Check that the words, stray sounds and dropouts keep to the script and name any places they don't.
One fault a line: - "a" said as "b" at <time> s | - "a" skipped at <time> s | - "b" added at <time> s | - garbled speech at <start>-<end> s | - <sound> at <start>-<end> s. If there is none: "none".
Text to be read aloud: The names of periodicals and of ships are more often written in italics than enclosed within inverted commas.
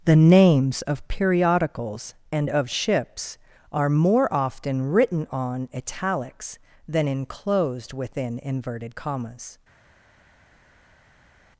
- "in" said as "on" at 5.3 s